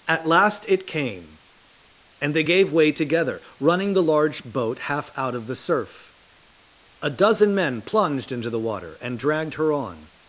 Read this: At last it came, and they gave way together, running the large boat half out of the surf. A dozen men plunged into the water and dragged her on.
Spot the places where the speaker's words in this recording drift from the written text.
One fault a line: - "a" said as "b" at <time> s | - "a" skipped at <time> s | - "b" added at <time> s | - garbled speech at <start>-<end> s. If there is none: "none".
none